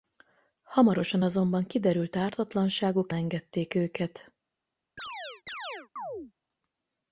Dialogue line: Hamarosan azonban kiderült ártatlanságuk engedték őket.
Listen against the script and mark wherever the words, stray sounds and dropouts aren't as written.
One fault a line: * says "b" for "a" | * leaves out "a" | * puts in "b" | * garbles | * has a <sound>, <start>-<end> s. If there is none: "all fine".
* has a chirp, 5.0-6.3 s